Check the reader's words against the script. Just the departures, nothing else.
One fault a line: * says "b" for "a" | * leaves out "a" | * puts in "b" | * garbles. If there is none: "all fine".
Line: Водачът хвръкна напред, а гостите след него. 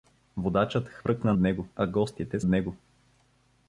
* says "него" for "напред"
* leaves out "след"